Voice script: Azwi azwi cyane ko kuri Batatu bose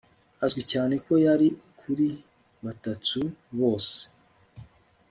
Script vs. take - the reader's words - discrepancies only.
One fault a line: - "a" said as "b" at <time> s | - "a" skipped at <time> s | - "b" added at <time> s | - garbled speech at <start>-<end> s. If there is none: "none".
- "azwi" skipped at 0.6 s
- "yari" added at 1.2 s